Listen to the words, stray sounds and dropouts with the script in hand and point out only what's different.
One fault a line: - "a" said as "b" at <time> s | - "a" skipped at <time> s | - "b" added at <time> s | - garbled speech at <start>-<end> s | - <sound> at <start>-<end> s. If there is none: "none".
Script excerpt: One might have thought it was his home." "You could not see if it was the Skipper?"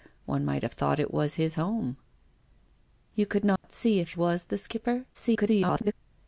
- dropout at 3.6-3.6 s
- "it" skipped at 4.2 s
- garbled speech at 5.1-5.9 s